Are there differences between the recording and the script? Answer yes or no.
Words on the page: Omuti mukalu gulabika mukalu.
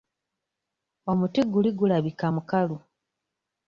yes